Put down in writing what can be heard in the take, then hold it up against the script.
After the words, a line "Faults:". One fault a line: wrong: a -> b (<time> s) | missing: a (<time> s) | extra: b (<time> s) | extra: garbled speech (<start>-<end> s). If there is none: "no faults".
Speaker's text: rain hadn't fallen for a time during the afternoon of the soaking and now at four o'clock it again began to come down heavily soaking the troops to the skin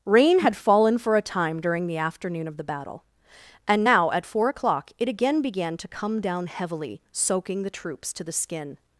rain had fallen for a time during the afternoon of the battle and now at four o'clock it again began to come down heavily soaking the troops to the skin
Faults:
wrong: hadn't -> had (0.4 s)
wrong: soaking -> battle (2.6 s)